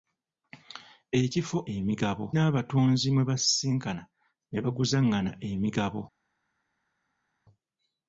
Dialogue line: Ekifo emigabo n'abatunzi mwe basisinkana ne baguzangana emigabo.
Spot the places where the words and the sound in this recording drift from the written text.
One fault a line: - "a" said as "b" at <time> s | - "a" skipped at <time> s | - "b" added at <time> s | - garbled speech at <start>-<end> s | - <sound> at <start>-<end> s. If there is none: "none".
none